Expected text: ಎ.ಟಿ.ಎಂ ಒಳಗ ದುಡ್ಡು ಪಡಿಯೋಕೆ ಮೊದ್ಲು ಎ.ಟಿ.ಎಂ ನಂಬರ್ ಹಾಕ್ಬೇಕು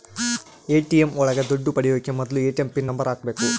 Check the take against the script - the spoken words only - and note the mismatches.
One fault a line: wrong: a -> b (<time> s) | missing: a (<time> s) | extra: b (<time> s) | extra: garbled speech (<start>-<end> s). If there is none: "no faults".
extra: ಪಿನ್ (2.7 s)